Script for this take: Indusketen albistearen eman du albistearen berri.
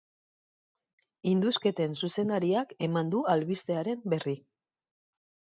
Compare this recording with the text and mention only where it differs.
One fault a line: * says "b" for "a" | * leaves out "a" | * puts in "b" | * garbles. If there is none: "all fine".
* says "zuzendariak" for "albistearen"